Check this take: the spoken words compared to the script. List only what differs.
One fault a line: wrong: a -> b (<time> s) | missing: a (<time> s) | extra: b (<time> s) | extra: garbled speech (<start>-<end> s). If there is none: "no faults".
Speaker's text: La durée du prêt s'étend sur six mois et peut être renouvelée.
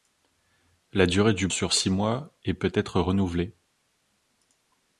missing: prêt s'étend (1.5 s)